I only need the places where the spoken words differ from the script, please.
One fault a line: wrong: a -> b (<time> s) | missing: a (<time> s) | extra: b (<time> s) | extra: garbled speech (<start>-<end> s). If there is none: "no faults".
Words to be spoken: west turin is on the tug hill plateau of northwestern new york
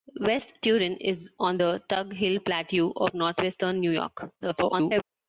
extra: garbled speech (4.4-5.0 s)